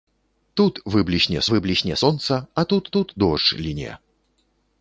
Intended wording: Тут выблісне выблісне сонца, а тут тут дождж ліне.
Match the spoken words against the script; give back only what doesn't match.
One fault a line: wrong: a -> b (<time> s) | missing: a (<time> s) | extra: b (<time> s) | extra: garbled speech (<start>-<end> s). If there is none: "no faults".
no faults